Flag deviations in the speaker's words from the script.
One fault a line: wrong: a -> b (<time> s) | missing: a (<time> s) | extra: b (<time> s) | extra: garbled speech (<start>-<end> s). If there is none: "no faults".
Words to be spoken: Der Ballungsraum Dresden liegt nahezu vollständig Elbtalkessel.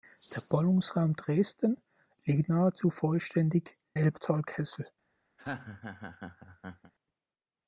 no faults